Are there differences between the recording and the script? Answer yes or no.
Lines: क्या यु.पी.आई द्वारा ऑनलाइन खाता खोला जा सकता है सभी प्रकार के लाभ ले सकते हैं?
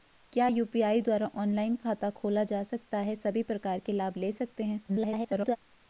yes